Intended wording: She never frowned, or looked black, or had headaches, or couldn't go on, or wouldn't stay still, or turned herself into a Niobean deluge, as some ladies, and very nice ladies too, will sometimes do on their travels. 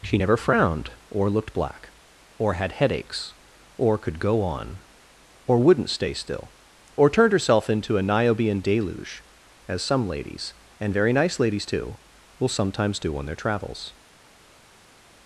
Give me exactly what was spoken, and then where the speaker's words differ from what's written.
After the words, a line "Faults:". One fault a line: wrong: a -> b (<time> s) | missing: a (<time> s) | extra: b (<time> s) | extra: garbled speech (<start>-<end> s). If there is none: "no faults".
She never frowned, or looked black, or had headaches, or could go on, or wouldn't stay still, or turned herself into a Niobean deluge, as some ladies, and very nice ladies too, will sometimes do on their travels.
Faults:
wrong: couldn't -> could (4.0 s)